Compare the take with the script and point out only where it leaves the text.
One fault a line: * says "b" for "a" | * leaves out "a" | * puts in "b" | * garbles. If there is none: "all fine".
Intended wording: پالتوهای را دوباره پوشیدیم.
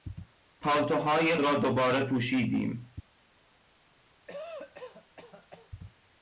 all fine